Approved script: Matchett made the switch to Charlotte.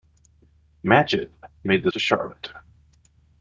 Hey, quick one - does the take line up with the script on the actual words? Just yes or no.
no